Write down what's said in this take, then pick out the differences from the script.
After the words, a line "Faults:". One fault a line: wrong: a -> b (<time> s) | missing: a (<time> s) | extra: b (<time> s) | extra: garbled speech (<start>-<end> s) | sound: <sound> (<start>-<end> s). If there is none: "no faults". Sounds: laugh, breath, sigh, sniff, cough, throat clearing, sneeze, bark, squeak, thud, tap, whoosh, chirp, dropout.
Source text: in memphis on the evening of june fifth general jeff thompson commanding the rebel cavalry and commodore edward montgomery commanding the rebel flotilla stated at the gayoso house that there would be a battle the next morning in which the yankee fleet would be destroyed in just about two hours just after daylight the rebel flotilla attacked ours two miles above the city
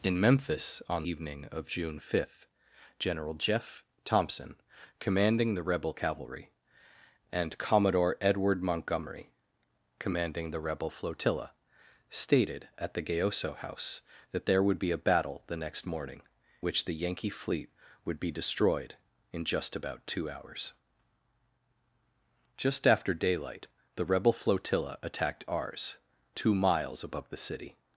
in memphis on evening of june fifth general jeff thompson commanding the rebel cavalry and commodore edward montgomery commanding the rebel flotilla stated at the gayoso house that there would be a battle the next morning which the yankee fleet would be destroyed in just about two hours just after daylight the rebel flotilla attacked ours two miles above the city
Faults:
missing: the (1.1 s)
missing: in (16.2 s)